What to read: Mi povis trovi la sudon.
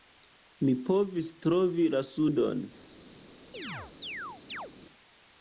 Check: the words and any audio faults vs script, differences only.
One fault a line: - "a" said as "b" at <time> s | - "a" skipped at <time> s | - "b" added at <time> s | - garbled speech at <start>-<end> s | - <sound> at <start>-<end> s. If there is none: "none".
- chirp at 3.5-4.7 s